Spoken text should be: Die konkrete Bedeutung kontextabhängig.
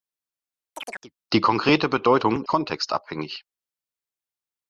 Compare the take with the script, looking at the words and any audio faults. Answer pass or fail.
fail